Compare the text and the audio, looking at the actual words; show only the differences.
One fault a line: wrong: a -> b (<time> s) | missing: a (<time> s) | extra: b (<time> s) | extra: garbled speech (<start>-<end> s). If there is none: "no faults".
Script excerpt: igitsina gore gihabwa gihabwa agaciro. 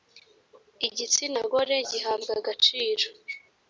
missing: gihabwa (2.3 s)